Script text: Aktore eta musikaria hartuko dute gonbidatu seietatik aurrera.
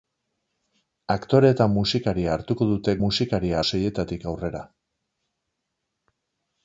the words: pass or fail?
fail